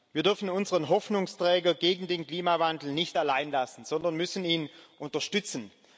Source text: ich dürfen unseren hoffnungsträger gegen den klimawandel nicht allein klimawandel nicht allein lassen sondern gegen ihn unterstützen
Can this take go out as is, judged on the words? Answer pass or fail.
fail